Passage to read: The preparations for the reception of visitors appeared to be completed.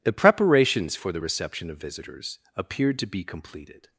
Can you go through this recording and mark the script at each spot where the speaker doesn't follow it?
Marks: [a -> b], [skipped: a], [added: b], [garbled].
The preparations for the reception of visitors appeared to be completed.